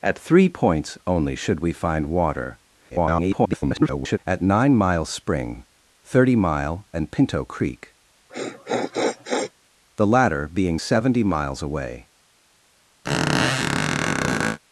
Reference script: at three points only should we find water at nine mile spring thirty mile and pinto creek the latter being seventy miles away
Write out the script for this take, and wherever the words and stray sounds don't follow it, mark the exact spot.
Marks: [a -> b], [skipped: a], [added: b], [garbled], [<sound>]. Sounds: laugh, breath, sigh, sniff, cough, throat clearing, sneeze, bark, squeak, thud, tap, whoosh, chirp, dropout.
at three points only should we find water [garbled] at nine mile spring thirty mile and pinto creek [sniff] the latter being seventy miles away [squeak]